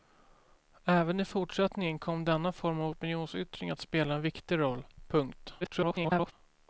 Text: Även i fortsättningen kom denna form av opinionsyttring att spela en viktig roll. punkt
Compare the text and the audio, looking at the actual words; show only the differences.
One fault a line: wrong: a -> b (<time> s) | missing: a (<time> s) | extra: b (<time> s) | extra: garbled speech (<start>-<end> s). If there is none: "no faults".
extra: garbled speech (5.6-6.3 s)